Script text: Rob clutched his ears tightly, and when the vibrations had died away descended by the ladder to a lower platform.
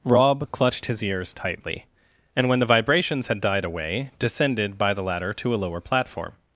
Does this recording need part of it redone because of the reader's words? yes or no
no